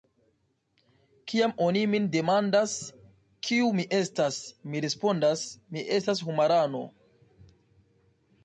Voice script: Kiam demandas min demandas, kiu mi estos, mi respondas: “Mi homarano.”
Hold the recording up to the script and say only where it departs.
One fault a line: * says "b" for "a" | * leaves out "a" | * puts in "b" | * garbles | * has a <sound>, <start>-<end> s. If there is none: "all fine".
* says "oni" for "demandas"
* says "estas" for "estos"
* puts in "estas"